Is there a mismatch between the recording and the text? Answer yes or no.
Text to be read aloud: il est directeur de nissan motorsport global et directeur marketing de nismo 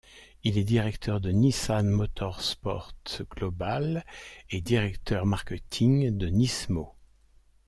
no